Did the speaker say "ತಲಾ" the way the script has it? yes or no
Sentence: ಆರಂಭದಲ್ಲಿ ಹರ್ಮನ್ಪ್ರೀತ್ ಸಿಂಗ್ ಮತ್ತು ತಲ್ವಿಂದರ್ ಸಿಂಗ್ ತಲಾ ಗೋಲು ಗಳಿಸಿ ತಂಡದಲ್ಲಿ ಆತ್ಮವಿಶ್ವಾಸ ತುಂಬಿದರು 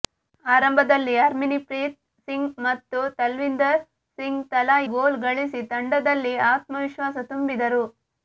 yes